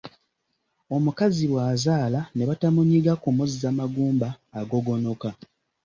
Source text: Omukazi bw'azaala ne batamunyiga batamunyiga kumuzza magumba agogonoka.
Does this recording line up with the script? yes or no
no